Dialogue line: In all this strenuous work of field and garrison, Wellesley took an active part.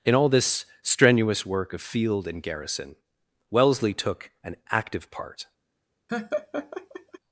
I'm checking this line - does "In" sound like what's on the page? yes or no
yes